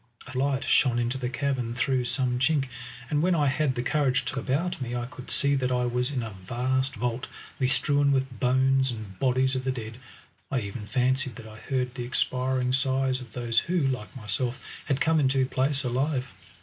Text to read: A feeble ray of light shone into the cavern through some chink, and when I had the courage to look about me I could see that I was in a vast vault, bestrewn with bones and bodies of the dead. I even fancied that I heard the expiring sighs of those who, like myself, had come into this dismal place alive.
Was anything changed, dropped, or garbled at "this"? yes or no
yes